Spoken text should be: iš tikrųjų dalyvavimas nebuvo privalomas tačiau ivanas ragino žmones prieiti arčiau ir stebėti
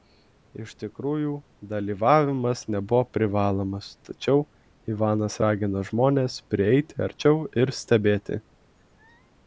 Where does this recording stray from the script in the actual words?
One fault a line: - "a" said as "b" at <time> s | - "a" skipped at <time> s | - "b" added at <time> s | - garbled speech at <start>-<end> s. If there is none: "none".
none